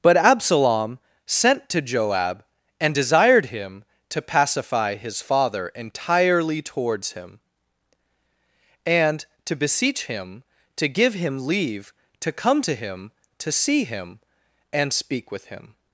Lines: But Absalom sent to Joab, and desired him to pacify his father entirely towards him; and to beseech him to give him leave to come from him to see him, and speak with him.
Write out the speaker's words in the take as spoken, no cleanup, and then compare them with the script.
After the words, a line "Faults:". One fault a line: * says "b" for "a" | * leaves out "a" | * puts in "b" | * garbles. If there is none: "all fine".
But Absalom sent to Joab, and desired him to pacify his father entirely towards him; and to beseech him to give him leave to come to him to see him, and speak with him.
Faults:
* says "to" for "from"